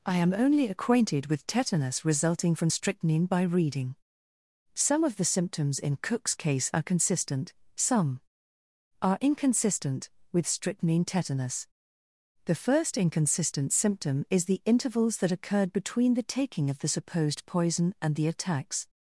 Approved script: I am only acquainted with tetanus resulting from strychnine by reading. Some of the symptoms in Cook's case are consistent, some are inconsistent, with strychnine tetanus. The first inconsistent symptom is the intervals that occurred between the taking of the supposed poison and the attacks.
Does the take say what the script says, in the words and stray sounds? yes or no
yes